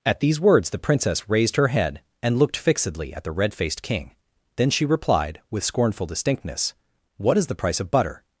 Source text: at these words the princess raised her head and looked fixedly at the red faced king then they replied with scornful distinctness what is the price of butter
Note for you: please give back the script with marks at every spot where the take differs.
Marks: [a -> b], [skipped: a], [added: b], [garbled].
at these words the princess raised her head and looked fixedly at the red faced king then [they -> she] replied with scornful distinctness what is the price of butter